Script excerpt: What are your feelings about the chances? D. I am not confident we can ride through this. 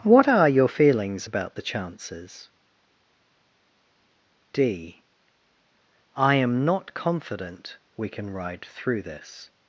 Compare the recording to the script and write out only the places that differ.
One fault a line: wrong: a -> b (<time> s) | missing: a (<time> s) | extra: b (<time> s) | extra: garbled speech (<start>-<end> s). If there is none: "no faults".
no faults